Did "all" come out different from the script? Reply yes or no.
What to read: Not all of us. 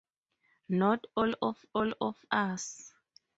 no